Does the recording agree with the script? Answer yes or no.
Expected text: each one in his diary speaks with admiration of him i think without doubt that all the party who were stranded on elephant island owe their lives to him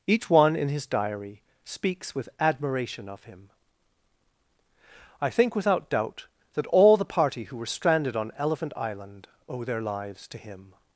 yes